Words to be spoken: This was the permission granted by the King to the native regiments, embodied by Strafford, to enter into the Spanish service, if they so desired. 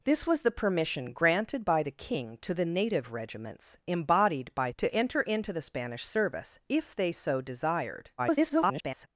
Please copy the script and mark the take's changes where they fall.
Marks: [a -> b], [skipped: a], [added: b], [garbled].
This was the permission granted by the King to the native regiments, embodied by [skipped: Strafford,] to enter into the Spanish service, if they so desired. [garbled]